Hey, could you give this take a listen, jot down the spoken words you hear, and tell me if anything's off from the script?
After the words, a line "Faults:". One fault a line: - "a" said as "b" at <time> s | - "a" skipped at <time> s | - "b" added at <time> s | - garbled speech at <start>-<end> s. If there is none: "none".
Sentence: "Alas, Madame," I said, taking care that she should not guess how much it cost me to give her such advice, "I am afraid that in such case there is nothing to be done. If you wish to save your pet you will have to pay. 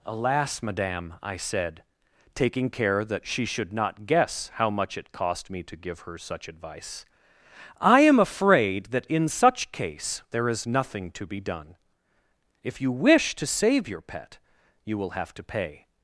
"Alas, Madame," I said, taking care that she should not guess how much it cost me to give her such advice, "I am afraid that in such case there is nothing to be done. If you wish to save your pet you will have to pay.
Faults:
none